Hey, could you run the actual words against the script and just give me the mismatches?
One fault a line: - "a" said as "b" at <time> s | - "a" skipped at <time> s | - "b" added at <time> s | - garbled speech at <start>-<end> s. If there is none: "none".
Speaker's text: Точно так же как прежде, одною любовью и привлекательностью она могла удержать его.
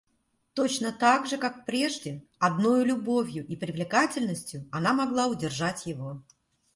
none